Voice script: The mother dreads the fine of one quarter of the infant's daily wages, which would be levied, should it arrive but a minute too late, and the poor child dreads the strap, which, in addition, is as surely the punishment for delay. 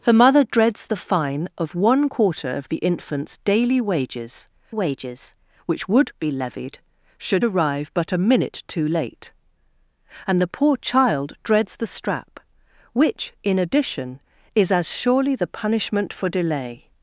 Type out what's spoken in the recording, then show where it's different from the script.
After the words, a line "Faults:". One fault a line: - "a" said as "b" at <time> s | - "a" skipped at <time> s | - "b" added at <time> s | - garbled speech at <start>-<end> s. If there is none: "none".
The mother dreads the fine of one quarter of the infant's daily wages wages, which would be levied, should arrive but a minute too late, and the poor child dreads the strap, which, in addition, is as surely the punishment for delay.
Faults:
- "wages" added at 4.7 s
- "it" skipped at 7.4 s